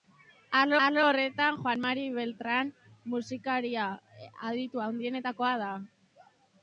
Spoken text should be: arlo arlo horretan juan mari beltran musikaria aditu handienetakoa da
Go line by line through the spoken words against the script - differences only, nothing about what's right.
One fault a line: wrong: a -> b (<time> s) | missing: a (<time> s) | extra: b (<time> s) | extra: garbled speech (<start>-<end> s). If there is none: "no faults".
no faults